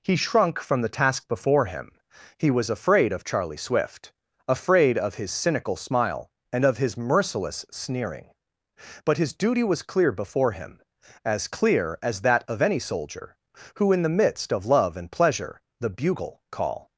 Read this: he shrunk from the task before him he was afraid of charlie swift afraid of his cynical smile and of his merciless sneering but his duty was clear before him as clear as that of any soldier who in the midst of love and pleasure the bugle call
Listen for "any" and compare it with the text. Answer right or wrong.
right